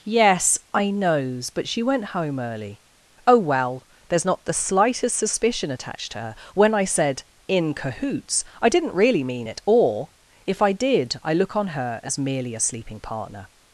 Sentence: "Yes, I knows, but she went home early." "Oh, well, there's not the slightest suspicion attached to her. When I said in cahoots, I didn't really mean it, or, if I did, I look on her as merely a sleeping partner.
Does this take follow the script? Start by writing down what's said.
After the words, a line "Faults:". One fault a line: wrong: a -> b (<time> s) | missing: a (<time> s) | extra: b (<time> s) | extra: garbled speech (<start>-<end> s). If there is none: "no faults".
"Yes, I knows, but she went home early." "Oh, well, there's not the slightest suspicion attached to her. When I said in cahoots, I didn't really mean it, or, if I did, I look on her as merely a sleeping partner.
Faults:
no faults